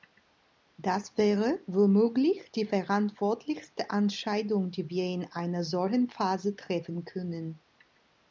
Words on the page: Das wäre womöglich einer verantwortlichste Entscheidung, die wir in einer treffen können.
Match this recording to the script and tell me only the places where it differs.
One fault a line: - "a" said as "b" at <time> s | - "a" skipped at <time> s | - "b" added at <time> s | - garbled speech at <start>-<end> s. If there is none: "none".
- "einer" said as "die" at 2.5 s
- "solchen Phase" added at 5.6 s